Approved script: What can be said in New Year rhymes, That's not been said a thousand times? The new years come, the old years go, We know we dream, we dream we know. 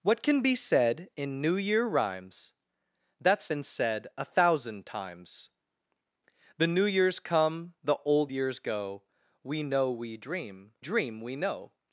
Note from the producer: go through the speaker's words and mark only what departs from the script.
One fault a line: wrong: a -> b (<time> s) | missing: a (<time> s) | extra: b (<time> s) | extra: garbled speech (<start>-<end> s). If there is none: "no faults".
missing: not (3.5 s)
missing: we (10.7 s)